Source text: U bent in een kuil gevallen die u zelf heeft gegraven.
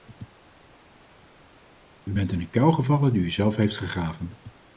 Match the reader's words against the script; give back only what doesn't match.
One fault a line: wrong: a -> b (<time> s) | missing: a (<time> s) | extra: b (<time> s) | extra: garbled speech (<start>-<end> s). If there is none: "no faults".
no faults